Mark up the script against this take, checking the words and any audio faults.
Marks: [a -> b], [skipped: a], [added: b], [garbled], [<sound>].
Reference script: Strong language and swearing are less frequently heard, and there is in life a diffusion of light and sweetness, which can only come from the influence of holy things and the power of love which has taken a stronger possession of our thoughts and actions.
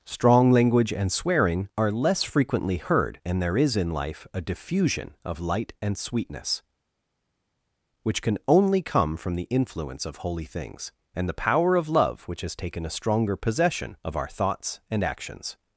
Strong language and swearing are less frequently heard, and there is in life a diffusion of light and sweetness, which can only come from the influence of holy things and the power of love which has taken a stronger possession of our thoughts and actions.